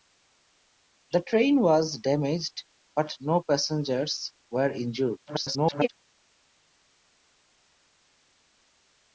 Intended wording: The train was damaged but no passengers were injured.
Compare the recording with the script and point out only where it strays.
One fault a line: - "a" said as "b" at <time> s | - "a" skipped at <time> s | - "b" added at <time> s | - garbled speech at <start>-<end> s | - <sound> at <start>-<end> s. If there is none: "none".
- garbled speech at 5.3-5.9 s